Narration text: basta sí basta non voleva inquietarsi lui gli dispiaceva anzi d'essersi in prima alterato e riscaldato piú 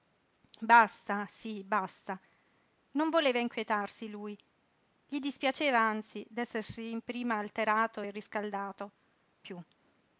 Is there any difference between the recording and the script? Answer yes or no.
no